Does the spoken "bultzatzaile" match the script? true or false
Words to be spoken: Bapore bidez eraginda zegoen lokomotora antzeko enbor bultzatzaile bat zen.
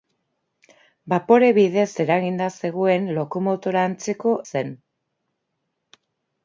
false